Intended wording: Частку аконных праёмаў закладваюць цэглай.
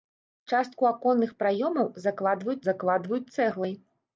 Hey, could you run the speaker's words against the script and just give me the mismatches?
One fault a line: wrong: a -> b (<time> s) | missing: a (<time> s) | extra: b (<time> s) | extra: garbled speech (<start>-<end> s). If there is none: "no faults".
extra: закладваюць (2.7 s)